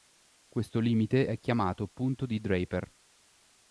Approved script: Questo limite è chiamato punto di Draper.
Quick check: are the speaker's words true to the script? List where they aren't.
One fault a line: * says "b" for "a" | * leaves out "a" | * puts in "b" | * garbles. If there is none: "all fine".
all fine